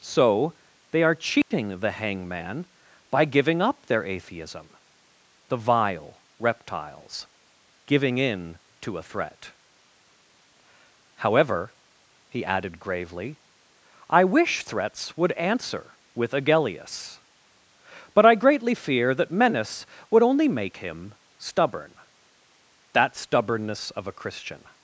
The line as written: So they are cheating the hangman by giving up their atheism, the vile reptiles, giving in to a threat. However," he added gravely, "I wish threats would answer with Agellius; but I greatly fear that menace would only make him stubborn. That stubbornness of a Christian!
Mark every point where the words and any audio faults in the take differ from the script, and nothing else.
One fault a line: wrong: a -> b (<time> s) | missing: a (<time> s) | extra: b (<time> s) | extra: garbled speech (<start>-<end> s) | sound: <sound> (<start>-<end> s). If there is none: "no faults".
sound: dropout (1.4-1.5 s)